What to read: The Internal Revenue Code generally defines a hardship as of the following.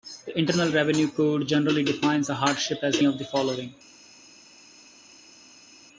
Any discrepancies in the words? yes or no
no